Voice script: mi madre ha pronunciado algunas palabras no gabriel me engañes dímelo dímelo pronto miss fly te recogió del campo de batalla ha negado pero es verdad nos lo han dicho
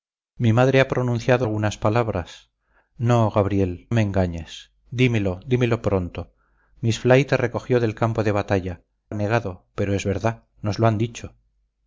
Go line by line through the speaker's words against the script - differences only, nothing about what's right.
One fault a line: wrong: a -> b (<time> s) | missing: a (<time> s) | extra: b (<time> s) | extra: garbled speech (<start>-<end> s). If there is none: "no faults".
no faults